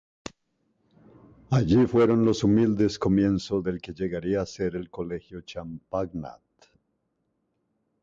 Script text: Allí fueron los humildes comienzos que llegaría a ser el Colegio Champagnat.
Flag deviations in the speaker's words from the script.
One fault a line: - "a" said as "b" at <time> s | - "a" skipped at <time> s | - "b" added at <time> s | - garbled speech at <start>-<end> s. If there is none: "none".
- "del" added at 3.6 s